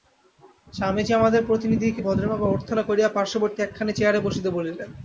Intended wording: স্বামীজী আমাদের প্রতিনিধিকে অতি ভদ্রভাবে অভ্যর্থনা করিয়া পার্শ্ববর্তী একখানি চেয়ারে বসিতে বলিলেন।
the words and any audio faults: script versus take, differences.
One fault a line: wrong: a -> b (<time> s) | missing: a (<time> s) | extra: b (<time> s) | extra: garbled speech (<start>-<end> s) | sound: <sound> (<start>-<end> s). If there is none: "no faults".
missing: অতি (2.0 s)